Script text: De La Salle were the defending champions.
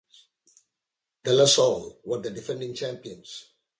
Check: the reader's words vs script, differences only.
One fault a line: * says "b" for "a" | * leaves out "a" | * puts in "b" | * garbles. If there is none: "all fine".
all fine